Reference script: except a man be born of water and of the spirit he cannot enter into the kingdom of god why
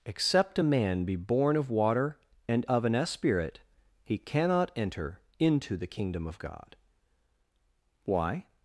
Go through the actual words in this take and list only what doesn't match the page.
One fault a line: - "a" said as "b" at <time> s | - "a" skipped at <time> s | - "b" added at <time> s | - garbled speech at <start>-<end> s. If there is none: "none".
- "the" said as "an" at 2.9 s